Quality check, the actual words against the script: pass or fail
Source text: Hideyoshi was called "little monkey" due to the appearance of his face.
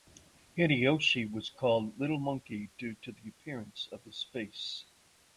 pass